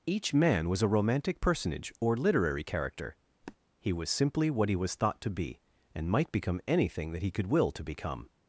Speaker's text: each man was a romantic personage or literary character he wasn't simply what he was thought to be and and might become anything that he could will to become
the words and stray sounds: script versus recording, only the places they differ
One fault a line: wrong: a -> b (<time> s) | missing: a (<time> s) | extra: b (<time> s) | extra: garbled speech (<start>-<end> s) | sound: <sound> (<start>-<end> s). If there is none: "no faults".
sound: sniff (3.4-3.6 s)
wrong: wasn't -> was (3.9 s)
missing: and (6.1 s)